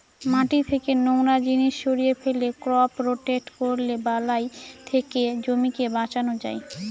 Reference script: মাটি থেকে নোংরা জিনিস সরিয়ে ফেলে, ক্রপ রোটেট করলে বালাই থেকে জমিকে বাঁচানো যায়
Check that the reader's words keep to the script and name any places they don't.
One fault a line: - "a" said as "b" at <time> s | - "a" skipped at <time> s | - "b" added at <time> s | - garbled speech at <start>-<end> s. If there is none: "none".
none